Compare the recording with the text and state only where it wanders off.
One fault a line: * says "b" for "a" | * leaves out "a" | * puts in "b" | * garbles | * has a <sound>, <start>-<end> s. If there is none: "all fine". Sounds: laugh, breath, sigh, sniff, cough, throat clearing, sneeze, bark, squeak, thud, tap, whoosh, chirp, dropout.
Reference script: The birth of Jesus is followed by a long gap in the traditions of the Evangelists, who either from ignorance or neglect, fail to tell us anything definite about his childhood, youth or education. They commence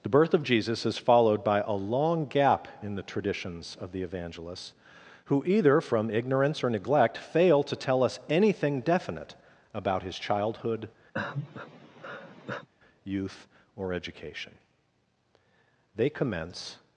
* has a sigh, 11.1-12.7 s